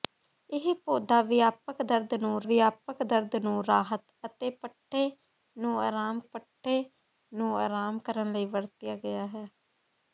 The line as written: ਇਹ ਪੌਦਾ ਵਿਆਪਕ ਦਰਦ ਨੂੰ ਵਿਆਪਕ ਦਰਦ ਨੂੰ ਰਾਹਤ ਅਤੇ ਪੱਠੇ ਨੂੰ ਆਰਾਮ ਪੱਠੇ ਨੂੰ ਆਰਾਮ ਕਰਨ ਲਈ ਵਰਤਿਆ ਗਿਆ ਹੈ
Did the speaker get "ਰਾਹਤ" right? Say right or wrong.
right